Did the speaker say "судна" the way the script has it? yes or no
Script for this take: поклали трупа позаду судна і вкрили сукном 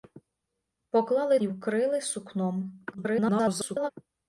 no